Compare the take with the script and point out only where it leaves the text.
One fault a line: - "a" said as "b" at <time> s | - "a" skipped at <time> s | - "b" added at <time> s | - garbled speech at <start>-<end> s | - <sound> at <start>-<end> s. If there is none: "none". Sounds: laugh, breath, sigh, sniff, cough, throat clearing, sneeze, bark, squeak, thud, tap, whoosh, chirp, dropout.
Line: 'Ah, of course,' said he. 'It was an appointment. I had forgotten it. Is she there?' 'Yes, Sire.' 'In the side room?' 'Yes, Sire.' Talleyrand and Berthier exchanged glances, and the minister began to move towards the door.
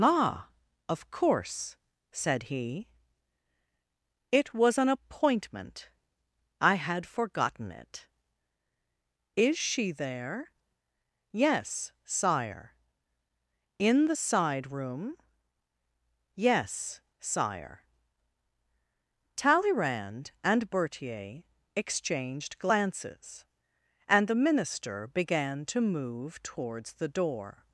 none